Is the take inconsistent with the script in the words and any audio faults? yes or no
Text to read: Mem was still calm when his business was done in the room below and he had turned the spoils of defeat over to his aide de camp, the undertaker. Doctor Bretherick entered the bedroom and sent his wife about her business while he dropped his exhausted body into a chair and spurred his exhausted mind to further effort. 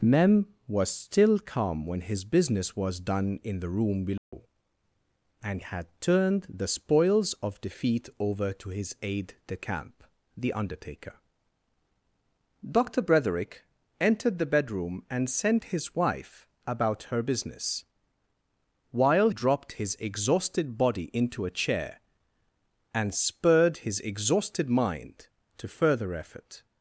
yes